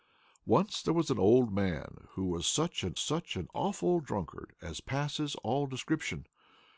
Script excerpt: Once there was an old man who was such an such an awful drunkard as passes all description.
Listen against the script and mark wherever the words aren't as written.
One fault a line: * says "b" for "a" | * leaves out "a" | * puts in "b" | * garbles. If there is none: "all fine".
all fine